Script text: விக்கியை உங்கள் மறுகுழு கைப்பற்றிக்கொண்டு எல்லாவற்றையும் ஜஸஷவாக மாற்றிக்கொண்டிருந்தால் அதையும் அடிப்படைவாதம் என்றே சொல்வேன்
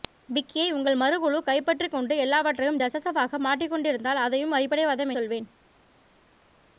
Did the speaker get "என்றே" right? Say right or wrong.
wrong